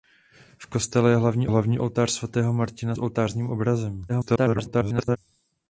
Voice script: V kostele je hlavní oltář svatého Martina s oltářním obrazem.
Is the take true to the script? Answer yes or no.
no